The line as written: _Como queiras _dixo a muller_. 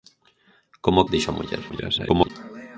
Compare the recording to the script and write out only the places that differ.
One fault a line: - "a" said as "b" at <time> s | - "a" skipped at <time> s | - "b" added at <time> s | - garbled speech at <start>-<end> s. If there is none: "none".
- "queiras" skipped at 1.1 s
- garbled speech at 1.7-2.3 s